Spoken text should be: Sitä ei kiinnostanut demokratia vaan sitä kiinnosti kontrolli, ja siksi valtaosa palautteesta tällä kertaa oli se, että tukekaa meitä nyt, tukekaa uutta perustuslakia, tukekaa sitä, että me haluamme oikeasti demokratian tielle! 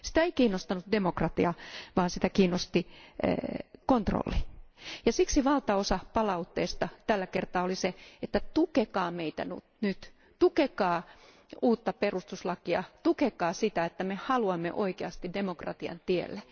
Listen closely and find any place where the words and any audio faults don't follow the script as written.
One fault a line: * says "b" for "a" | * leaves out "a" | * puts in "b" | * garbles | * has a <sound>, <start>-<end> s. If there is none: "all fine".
all fine